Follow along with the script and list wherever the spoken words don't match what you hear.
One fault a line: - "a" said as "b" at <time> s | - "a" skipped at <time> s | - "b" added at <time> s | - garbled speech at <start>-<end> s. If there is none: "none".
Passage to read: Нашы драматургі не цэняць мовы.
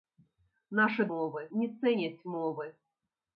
- "драматургі" said as "мовы" at 1.1 s